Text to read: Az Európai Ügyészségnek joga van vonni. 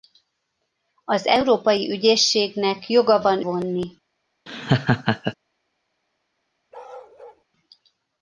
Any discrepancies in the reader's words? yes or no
no